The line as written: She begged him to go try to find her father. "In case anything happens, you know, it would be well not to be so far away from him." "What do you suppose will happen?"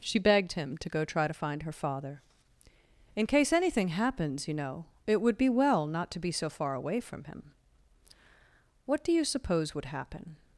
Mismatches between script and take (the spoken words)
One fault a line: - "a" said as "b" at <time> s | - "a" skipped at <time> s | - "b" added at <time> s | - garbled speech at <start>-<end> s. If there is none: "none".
- "will" said as "would" at 9.7 s